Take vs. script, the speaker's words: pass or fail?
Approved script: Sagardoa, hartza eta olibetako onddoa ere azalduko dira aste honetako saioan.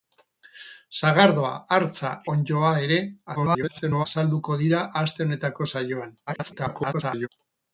fail